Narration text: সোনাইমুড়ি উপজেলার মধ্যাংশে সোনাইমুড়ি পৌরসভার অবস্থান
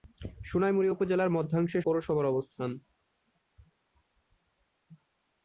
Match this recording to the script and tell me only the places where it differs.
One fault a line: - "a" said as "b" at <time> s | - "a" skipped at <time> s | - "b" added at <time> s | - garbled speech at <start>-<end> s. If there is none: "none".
- "সোনাইমুড়ি" skipped at 1.8 s